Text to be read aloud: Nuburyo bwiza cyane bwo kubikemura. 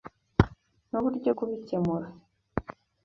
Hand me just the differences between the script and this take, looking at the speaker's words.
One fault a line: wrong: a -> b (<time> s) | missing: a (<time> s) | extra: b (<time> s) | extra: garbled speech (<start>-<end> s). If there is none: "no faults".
missing: bwiza cyane bwo (1.3 s)